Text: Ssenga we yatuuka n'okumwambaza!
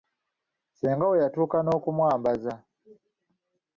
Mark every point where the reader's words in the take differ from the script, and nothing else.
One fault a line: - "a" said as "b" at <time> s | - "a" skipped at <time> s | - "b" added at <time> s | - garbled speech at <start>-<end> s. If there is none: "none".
none